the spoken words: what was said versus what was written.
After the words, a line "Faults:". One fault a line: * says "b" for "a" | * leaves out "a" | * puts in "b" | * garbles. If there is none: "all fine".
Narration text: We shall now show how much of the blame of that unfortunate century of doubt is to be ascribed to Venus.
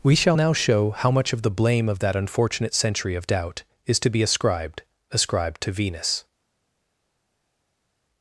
We shall now show how much of the blame of that unfortunate century of doubt is to be ascribed ascribed to Venus.
Faults:
* puts in "ascribed"